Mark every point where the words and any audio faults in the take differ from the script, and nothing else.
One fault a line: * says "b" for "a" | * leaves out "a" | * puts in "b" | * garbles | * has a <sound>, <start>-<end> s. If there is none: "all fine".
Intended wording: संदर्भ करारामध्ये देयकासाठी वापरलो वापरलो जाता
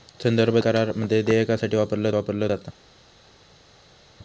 all fine